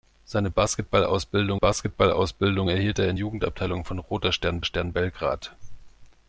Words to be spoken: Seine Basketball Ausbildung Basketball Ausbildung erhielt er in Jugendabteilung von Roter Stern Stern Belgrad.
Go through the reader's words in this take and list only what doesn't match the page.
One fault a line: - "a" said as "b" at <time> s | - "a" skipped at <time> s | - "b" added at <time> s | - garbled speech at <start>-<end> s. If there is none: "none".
none